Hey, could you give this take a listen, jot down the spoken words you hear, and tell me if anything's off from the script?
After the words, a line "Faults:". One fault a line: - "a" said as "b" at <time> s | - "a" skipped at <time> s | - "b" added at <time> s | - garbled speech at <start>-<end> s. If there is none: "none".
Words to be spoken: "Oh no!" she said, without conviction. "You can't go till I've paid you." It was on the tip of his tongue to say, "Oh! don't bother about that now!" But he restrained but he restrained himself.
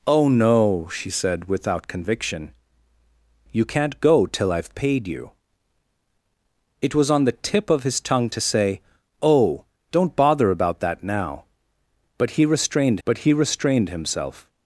"Oh no!" she said, without conviction. "You can't go till I've paid you." It was on the tip of his tongue to say, "Oh! don't bother about that now!" But he restrained but he restrained himself.
Faults:
none